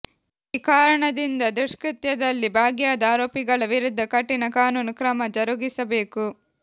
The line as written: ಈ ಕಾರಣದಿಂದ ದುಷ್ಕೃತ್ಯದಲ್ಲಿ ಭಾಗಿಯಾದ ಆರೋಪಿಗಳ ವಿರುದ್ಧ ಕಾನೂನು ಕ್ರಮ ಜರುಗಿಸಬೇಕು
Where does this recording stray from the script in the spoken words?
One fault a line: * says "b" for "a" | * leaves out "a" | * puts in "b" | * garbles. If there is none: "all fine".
* puts in "ಕಠಿಣ"